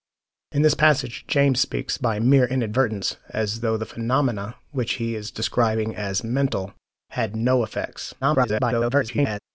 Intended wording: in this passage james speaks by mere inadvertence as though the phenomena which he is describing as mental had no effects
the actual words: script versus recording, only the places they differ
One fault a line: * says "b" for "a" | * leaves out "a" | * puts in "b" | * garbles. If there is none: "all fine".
* garbles